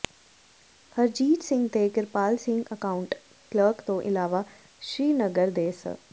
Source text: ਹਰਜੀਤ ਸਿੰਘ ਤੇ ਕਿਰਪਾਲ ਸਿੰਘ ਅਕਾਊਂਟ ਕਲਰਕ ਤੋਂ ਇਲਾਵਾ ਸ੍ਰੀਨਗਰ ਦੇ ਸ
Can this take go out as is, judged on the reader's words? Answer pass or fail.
pass